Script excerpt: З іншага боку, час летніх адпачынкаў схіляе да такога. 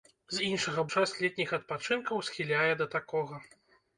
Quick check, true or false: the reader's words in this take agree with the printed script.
false